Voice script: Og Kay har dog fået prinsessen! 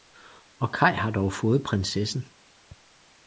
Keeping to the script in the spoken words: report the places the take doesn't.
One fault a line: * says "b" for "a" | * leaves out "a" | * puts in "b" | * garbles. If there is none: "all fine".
all fine